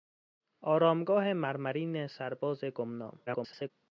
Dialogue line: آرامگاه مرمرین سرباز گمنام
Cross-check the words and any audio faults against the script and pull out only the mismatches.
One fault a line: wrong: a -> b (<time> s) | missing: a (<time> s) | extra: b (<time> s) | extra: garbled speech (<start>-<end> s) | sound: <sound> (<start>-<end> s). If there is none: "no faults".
extra: garbled speech (3.3-3.7 s)